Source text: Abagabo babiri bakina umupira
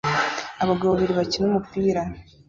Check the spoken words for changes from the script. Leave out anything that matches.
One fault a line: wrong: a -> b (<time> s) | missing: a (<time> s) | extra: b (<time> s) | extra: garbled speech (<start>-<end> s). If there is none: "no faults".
no faults